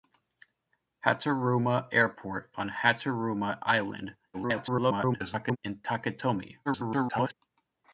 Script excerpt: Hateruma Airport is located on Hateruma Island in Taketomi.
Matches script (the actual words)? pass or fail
fail